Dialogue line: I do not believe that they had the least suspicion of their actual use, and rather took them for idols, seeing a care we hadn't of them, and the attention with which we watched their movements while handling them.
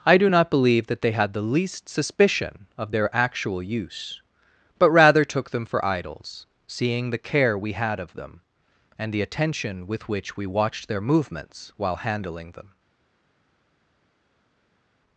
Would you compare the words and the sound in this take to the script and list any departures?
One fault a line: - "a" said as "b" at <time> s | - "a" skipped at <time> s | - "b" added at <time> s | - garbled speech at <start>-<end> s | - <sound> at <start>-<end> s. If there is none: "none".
- "and" said as "but" at 4.8 s
- "a" said as "the" at 7.1 s
- "hadn't" said as "had" at 7.7 s